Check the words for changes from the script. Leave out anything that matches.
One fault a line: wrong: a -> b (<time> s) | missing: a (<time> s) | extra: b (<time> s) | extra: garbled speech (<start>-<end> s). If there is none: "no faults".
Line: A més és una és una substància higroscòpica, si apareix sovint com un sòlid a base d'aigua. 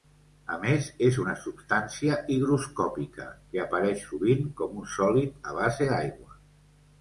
missing: és una (1.3 s)
wrong: si -> que (3.5 s)